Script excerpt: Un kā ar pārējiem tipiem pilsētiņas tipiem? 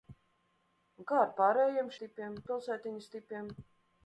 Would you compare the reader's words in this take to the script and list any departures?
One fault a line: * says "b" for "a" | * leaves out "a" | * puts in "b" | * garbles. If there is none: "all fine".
all fine